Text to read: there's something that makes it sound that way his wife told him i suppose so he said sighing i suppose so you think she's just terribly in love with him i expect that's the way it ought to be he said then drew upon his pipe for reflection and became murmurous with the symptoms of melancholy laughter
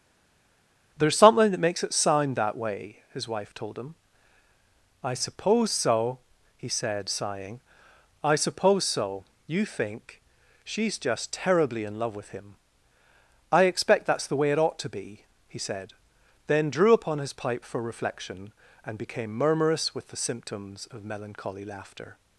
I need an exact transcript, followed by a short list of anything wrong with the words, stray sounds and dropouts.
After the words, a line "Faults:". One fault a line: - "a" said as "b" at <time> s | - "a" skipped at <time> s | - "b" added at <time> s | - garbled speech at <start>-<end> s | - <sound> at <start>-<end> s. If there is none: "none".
there's something that makes it sound that way his wife told him i suppose so he said sighing i suppose so you think she's just terribly in love with him i expect that's the way it ought to be he said then drew upon his pipe for reflection and became murmurous with the symptoms of melancholy laughter
Faults:
none